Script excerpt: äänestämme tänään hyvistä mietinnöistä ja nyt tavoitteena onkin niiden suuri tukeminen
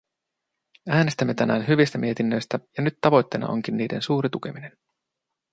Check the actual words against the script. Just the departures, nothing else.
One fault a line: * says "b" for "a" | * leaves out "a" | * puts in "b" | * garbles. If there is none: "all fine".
all fine